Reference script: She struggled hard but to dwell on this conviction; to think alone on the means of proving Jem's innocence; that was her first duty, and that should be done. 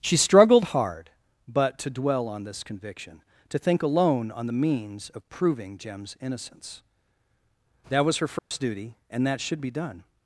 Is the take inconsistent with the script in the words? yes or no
no